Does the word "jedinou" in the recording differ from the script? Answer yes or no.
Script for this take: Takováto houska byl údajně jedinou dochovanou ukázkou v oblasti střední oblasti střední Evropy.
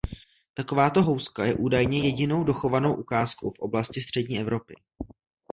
no